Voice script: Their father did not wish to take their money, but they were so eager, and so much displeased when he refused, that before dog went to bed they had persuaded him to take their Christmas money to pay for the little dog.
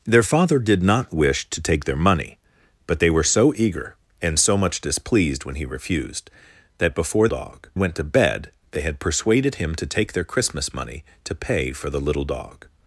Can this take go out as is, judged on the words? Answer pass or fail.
pass